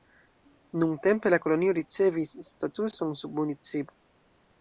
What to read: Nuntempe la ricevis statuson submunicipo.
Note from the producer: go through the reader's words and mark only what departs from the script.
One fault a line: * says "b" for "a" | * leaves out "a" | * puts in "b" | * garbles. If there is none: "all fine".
* puts in "kolonio"